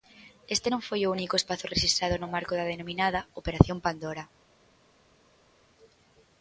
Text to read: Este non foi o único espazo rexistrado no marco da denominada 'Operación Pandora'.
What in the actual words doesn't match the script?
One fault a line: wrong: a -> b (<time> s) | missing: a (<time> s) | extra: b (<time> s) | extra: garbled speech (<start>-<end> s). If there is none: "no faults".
no faults